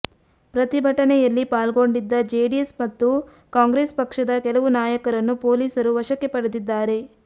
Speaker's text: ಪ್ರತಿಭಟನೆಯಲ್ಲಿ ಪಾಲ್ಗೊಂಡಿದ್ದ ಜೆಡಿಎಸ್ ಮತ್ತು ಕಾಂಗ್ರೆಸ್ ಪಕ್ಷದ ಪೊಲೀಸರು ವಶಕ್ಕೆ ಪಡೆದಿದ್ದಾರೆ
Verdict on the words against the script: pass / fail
fail